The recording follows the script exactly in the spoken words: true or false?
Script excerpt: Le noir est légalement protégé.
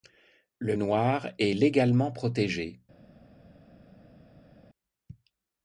true